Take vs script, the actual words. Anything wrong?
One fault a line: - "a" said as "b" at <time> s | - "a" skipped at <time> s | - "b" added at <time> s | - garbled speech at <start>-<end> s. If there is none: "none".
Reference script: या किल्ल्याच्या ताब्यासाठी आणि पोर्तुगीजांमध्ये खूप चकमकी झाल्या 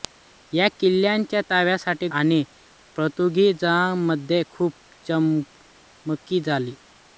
none